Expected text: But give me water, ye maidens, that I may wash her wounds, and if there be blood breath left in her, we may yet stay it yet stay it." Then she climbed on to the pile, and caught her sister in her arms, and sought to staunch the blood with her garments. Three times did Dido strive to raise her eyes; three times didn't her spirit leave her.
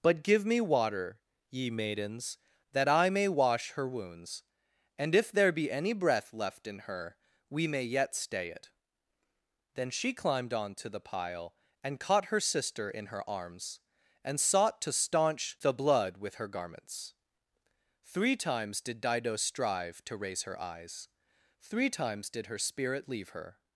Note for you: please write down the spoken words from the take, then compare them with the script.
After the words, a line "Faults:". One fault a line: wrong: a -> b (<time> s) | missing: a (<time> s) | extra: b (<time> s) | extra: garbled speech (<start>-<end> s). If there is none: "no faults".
But give me water, ye maidens, that I may wash her wounds, and if there be any breath left in her, we may yet stay it." Then she climbed on to the pile, and caught her sister in her arms, and sought to staunch the blood with her garments. Three times did Dido strive to raise her eyes; three times did her spirit leave her.
Faults:
wrong: blood -> any (5.7 s)
missing: yet stay it (8.7 s)
wrong: didn't -> did (22.3 s)